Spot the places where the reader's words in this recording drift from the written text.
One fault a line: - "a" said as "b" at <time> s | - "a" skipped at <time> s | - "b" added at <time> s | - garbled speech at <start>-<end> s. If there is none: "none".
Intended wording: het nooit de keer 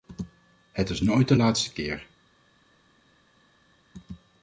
- "is" added at 0.9 s
- "laatste" added at 1.3 s